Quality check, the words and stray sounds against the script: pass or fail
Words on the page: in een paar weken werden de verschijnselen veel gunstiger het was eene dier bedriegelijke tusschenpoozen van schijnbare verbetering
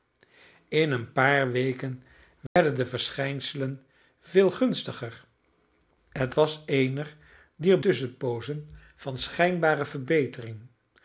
fail